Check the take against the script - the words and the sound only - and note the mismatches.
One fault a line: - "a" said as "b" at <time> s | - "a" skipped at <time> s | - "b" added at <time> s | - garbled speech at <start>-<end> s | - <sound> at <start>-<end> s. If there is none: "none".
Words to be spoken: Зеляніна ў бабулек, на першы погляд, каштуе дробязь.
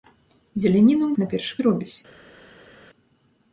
- "бабулек" skipped at 1.1 s
- "погляд каштуе" skipped at 1.5 s